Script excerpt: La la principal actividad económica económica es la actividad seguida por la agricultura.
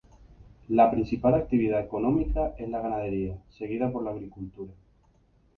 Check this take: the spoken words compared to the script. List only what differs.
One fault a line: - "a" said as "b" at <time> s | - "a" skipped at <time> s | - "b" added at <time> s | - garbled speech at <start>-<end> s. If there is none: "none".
- "la" skipped at 0.9 s
- "económica" skipped at 2.5 s
- "actividad" said as "ganadería" at 2.8 s